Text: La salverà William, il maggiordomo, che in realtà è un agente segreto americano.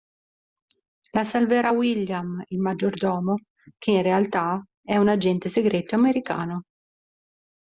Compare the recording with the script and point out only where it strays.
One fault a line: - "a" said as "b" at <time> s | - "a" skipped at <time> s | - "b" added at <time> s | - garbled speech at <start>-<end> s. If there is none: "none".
none